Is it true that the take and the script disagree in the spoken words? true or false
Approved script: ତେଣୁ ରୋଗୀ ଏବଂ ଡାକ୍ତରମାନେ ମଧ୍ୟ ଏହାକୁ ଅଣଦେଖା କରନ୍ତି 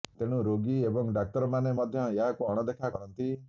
false